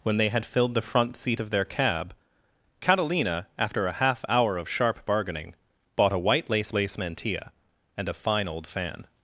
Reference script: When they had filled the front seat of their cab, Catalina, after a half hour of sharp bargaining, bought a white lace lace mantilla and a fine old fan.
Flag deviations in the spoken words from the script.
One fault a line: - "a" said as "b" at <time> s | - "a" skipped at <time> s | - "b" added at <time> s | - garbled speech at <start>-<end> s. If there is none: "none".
none